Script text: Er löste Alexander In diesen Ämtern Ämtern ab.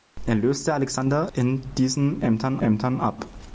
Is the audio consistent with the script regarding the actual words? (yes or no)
yes